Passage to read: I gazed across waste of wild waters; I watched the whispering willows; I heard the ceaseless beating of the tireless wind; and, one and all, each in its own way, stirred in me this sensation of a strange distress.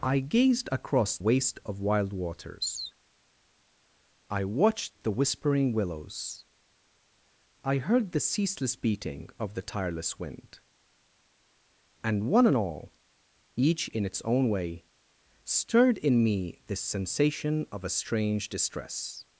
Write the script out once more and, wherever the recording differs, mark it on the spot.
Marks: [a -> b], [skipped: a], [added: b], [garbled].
I gazed across waste of wild waters; I watched the whispering willows; I heard the ceaseless beating of the tireless wind; and, one and all, each in its own way, stirred in me this sensation of a strange distress.